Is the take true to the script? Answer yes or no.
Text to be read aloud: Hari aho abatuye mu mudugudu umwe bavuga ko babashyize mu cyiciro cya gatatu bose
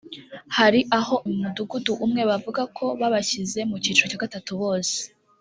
no